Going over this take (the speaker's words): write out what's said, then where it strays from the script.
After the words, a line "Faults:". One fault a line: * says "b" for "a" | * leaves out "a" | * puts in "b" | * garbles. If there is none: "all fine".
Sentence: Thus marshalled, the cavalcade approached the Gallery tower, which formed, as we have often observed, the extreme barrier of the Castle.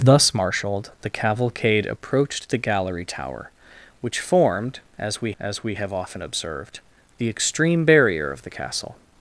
Thus marshalled, the cavalcade approached the Gallery tower, which formed, as we as we have often observed, the extreme barrier of the Castle.
Faults:
* puts in "as we"